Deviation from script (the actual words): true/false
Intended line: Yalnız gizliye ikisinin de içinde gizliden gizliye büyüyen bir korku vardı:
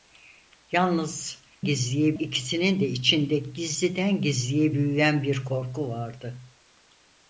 false